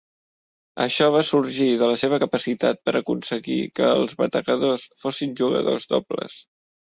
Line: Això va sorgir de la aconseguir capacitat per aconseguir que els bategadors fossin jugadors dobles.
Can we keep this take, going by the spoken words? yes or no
no